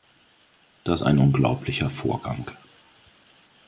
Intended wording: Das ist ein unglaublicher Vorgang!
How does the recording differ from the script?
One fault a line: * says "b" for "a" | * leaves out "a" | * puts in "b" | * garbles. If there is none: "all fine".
* leaves out "ist"